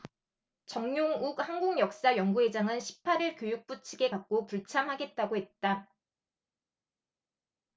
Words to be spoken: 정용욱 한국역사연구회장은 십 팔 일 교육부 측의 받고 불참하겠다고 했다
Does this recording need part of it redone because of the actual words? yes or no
no